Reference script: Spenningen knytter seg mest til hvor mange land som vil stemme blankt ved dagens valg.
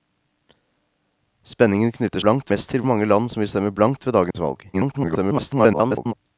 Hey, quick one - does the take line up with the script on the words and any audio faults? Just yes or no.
no